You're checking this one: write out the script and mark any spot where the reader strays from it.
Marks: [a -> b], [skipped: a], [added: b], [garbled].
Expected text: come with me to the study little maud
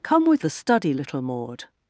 come with [skipped: me to] the study little maud